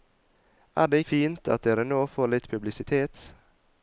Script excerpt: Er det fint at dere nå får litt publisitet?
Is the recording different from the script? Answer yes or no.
no